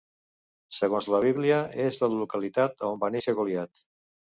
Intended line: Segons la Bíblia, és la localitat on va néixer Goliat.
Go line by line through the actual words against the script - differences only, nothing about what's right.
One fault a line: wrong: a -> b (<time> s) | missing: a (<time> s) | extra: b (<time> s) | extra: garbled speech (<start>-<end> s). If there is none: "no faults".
no faults